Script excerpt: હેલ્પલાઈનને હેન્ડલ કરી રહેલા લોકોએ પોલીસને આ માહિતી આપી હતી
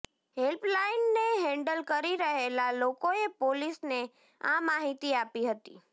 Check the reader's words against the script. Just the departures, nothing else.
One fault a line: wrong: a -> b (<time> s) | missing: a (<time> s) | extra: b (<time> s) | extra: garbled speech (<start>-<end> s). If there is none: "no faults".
no faults